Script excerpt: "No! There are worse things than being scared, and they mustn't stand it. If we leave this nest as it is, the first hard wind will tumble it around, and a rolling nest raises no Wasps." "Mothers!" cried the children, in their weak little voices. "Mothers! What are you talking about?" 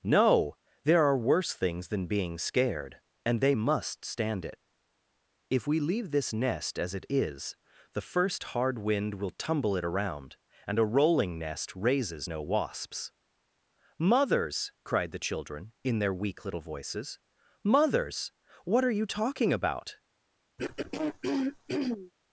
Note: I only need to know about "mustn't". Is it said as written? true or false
false